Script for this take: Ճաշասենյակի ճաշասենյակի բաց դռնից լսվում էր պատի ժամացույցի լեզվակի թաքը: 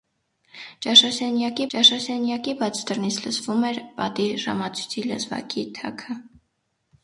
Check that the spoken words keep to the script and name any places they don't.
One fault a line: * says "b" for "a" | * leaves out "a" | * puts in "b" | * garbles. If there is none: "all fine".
all fine